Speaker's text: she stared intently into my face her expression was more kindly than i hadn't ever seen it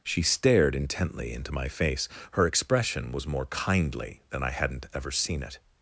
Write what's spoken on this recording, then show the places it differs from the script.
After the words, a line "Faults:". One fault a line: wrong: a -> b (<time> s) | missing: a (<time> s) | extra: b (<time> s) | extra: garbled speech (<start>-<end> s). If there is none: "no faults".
she stared intently into my face her expression was more kindly than i hadn't ever seen it
Faults:
no faults